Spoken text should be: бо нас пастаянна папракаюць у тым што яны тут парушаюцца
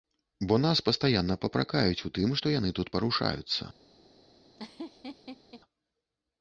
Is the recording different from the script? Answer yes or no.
no